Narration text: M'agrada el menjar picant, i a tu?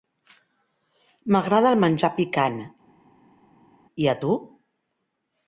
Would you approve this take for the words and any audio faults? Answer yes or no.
yes